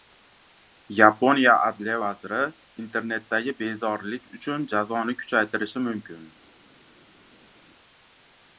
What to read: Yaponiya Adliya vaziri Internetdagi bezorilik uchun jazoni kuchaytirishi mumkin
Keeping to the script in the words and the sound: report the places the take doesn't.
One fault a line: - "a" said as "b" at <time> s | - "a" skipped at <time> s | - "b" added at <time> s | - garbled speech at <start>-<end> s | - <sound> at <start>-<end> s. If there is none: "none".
none